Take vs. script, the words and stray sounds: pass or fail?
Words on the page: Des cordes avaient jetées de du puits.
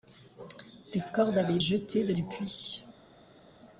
pass